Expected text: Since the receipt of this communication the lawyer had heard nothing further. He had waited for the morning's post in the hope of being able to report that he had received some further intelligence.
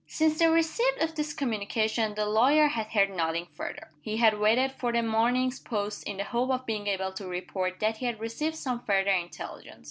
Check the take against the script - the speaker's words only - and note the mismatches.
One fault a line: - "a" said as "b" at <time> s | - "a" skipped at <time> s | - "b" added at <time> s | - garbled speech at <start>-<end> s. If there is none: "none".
none